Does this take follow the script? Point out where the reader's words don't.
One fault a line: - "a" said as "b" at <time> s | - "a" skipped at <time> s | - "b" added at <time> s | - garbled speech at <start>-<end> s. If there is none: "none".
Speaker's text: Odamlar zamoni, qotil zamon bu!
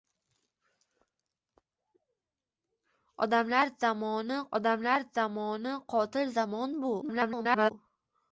- "odamlar zamoni" added at 4.6 s
- garbled speech at 7.0-7.7 s